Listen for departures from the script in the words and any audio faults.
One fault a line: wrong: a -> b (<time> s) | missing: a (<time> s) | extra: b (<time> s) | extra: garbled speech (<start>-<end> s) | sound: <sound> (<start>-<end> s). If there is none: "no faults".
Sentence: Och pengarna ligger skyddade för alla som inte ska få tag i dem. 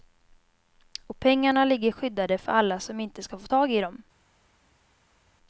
no faults